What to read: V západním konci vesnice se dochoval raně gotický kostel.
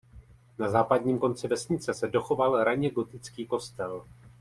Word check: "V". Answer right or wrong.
wrong